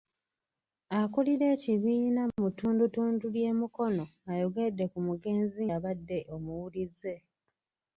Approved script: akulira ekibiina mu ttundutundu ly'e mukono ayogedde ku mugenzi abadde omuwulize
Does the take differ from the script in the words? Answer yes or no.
no